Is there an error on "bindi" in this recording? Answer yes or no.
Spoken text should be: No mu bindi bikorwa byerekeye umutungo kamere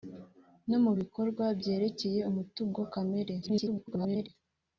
yes